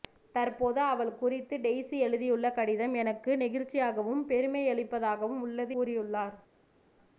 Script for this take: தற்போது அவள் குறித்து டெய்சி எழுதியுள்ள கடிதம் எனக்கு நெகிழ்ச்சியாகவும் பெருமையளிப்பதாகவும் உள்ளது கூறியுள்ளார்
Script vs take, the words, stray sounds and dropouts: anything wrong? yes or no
no